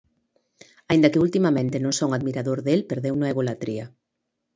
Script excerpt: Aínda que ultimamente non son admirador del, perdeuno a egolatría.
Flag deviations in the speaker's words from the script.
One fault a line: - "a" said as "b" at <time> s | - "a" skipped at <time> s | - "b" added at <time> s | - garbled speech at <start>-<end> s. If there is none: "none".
none